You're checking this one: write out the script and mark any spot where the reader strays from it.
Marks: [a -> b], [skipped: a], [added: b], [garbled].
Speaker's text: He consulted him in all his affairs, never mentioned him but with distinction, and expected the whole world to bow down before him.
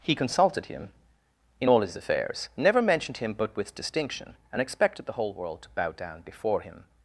He consulted him in all his affairs, never mentioned him but with distinction, and expected the whole world to bow down before him.